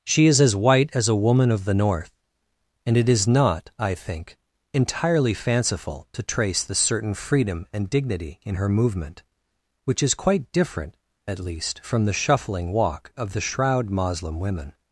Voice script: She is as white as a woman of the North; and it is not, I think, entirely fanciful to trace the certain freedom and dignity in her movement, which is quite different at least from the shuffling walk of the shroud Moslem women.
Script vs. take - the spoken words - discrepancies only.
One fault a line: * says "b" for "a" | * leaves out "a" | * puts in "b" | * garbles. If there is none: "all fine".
all fine